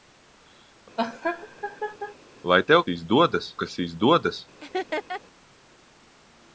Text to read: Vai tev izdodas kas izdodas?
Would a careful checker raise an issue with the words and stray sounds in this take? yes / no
yes